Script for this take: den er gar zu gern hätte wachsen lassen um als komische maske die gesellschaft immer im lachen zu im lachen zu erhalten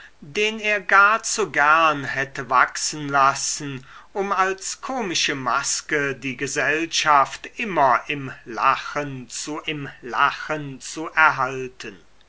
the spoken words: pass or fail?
pass